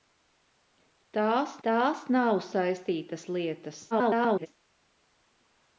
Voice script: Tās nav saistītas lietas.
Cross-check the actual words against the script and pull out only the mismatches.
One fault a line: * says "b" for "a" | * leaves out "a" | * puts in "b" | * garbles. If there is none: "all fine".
* puts in "tās"
* garbles